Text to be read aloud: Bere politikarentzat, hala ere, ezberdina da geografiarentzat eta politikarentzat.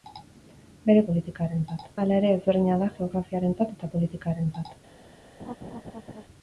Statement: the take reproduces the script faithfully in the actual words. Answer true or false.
true